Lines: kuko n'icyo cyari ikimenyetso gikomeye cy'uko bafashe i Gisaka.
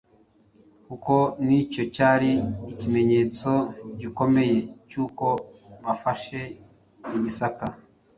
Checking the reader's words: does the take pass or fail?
pass